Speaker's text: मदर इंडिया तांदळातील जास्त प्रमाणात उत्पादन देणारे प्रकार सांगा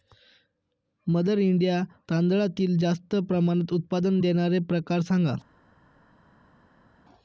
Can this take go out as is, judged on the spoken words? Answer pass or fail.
pass